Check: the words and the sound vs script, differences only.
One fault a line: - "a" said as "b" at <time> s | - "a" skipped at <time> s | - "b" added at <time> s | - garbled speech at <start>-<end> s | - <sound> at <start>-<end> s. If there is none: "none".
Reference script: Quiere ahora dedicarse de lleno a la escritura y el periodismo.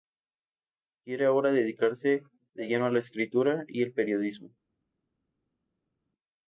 none